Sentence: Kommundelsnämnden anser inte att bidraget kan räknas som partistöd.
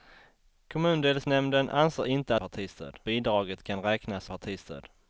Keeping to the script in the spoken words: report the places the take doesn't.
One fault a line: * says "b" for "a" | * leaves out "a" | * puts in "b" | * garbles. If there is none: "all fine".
* says "partistöd" for "att"
* leaves out "som"